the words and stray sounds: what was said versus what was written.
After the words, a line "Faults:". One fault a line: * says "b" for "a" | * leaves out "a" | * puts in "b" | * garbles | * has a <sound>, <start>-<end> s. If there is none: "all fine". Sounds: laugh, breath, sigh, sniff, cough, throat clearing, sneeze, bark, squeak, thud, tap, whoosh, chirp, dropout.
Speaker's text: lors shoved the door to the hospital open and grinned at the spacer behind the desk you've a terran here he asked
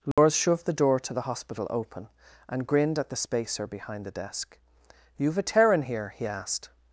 lors shoved the door to the hospital open and grinned at the spacer behind the desk you've a terran here he asked
Faults:
* has a dropout, 0.1-0.2 s